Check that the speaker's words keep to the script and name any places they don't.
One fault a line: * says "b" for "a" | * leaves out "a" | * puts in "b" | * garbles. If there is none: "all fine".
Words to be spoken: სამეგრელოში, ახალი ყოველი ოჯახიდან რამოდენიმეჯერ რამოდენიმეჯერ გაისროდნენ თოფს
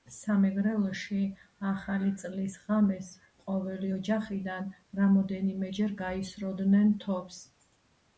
* puts in "წლის ღამეს"
* leaves out "რამოდენიმეჯერ"